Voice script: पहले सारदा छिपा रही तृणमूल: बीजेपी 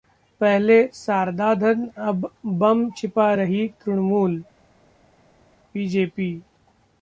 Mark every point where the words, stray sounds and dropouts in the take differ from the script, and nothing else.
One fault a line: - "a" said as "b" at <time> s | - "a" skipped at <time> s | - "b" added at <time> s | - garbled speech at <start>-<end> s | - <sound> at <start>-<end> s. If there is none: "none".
- "धन अब बम" added at 1.6 s